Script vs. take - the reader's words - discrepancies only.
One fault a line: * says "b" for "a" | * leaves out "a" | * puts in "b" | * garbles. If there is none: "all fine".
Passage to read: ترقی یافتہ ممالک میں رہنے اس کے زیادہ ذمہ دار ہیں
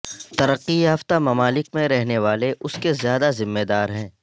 * puts in "والے"